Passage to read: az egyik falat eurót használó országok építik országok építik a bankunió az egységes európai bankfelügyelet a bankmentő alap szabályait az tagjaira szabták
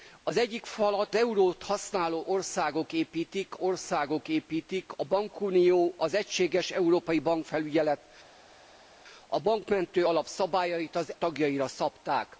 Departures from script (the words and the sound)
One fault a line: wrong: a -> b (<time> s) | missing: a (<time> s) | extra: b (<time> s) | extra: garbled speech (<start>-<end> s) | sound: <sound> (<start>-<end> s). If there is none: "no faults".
no faults